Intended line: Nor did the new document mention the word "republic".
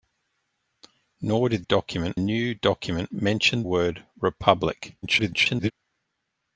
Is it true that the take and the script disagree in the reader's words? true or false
true